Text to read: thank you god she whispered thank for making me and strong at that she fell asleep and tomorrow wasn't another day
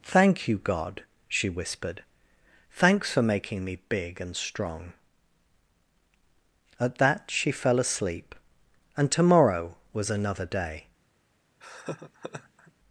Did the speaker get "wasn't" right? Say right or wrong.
wrong